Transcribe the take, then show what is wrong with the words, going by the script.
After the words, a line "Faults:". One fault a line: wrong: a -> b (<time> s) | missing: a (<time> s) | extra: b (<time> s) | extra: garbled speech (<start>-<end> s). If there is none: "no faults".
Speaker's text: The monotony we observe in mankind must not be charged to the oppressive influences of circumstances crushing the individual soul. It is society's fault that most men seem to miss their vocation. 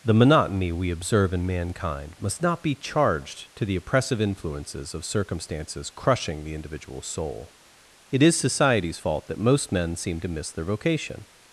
The monotony we observe in mankind must not be charged to the oppressive influences of circumstances crushing the individual soul. It is society's fault that most men seem to miss their vocation.
Faults:
no faults